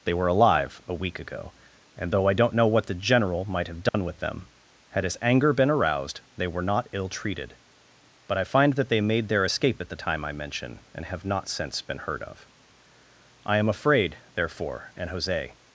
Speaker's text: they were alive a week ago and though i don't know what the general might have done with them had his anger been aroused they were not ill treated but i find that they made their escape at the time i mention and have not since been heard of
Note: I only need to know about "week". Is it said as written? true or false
true